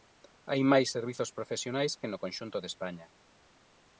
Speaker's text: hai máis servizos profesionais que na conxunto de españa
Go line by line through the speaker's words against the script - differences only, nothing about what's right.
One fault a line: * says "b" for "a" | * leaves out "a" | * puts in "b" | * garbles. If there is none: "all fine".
* says "no" for "na"